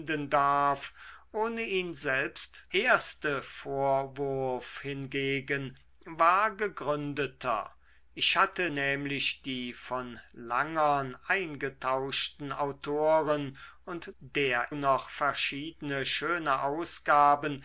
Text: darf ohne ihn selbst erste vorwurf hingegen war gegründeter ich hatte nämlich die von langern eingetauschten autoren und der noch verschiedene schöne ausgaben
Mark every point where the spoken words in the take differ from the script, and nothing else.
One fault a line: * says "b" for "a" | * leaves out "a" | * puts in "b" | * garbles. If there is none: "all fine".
all fine